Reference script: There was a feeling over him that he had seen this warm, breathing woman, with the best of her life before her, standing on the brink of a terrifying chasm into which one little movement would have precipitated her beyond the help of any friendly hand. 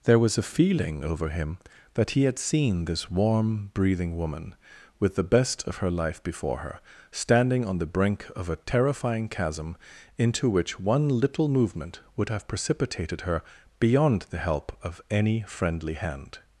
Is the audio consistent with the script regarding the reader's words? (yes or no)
yes